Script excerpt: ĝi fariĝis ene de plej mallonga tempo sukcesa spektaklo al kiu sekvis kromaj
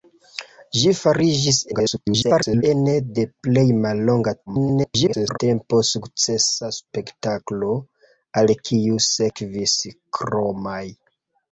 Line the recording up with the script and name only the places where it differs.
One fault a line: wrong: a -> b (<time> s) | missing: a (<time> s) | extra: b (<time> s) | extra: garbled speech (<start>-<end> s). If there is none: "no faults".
extra: garbled speech (1.7-2.6 s)
extra: garbled speech (4.5-5.4 s)